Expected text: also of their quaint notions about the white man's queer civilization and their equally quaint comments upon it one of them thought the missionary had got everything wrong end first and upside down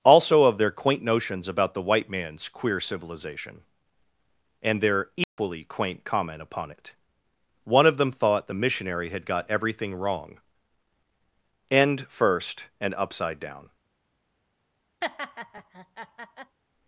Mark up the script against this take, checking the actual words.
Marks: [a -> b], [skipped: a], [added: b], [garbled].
also of their quaint notions about the white man's queer civilization and their equally quaint [comments -> comment] upon it one of them thought the missionary had got everything wrong end first and upside down